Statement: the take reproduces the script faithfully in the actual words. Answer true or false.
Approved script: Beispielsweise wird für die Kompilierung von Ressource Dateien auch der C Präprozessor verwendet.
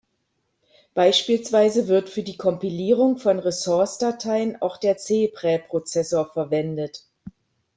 true